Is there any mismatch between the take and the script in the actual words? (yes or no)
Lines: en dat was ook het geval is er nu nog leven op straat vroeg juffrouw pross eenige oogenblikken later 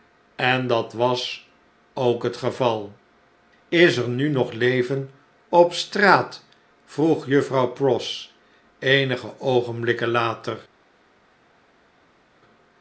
no